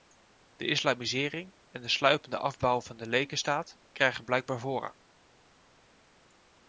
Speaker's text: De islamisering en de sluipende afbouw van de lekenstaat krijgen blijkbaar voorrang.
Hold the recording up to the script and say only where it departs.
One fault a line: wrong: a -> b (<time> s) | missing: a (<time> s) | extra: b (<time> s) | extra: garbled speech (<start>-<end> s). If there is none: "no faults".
no faults